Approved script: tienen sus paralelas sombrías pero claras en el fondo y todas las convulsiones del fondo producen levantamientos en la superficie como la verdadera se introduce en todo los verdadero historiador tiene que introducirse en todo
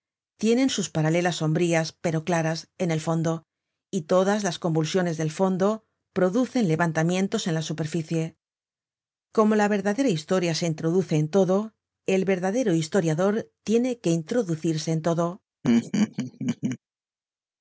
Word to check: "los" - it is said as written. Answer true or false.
false